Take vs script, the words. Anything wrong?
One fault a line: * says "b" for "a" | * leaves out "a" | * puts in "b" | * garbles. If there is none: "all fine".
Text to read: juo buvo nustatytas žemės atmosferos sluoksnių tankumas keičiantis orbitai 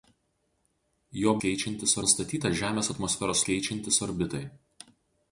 * says "keičiantis" for "buvo"
* leaves out "sluoksnių tankumas"